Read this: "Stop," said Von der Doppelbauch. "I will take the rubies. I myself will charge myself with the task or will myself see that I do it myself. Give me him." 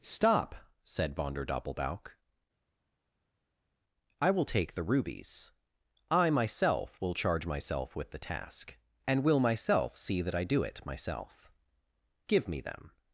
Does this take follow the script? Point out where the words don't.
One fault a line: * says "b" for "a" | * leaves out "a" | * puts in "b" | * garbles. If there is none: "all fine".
* says "and" for "or"
* says "them" for "him"